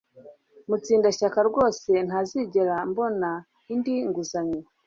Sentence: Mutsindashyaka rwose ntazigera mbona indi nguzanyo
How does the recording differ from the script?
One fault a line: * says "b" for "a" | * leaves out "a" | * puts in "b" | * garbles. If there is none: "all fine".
all fine